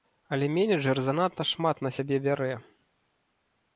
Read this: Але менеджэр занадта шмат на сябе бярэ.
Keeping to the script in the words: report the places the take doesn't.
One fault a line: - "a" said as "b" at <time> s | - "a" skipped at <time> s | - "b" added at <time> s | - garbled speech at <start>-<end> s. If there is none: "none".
none